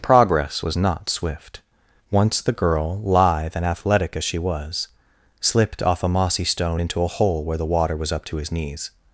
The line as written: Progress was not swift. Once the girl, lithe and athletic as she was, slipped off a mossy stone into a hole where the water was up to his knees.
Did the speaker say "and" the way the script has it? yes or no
yes